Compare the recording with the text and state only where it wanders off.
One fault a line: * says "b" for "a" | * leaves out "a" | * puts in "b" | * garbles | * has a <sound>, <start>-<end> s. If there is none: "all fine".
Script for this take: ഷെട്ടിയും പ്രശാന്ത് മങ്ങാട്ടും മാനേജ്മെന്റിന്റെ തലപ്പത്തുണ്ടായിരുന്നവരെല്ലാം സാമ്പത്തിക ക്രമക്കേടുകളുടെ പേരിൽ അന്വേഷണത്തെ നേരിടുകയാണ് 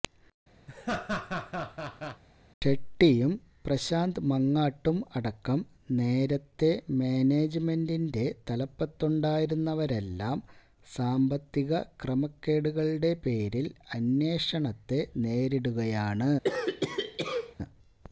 * has a laugh, 0.7-2.2 s
* puts in "അടക്കം നേരത്തെ"
* has a cough, 16.4-17.6 s